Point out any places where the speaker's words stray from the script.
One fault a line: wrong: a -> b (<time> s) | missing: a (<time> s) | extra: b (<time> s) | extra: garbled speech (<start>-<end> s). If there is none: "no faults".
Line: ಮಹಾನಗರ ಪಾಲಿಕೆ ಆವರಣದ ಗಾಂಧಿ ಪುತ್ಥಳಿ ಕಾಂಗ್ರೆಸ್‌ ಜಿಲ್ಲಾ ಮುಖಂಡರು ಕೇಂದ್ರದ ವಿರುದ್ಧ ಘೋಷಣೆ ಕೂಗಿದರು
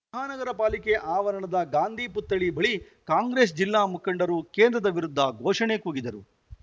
extra: ಬಳಿ (2.6 s)